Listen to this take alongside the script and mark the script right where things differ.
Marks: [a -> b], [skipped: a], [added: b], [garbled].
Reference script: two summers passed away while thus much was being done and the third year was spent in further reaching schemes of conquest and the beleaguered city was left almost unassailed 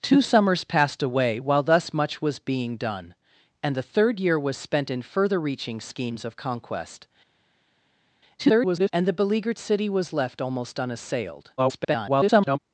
two summers passed away while thus much was being done and the third year was spent in further reaching schemes of conquest [garbled] and the beleaguered city was left almost unassailed [garbled]